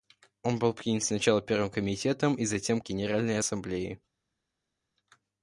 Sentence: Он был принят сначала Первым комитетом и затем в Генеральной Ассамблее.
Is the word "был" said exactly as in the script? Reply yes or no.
yes